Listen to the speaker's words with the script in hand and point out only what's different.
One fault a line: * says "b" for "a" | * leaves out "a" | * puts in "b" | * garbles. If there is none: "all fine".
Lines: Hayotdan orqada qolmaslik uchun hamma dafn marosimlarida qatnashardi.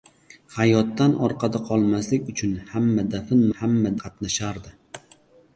* says "hamma" for "marosimlarida"